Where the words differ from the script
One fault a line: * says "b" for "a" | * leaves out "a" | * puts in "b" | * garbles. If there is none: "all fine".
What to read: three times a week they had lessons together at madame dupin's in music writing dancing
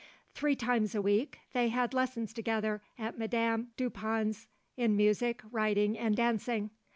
* puts in "and"